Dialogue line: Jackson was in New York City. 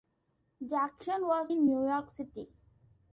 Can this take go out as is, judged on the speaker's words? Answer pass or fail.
pass